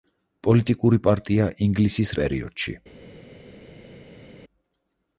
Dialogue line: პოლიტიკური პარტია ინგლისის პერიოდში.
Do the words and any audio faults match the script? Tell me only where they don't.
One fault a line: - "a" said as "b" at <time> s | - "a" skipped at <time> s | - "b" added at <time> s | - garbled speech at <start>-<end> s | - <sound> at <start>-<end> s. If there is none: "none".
none